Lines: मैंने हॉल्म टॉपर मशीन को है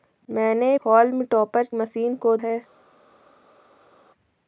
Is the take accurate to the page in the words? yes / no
yes